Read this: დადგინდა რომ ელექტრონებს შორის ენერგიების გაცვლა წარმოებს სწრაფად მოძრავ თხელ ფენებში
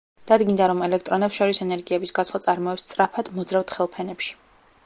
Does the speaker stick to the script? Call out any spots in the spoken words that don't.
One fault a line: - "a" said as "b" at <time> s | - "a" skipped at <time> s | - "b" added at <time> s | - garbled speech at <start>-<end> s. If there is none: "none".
none